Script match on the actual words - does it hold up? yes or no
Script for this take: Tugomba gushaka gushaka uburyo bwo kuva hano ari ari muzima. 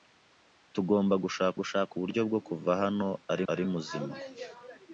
yes